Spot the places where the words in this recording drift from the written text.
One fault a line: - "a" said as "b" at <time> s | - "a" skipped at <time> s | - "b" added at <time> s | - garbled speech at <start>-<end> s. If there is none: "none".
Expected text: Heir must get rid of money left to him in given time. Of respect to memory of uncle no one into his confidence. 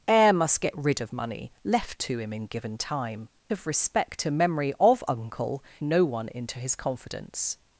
none